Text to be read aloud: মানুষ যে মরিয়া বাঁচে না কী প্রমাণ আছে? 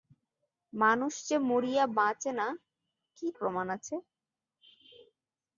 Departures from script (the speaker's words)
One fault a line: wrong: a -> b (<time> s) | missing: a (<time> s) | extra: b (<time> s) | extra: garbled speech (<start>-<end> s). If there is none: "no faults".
no faults